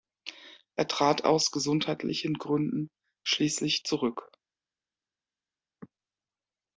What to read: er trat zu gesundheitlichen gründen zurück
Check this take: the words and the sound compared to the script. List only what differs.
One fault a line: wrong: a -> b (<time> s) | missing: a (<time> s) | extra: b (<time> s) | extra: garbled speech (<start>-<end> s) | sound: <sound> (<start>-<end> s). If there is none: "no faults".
wrong: zu -> aus (1.2 s)
extra: schließlich (3.2 s)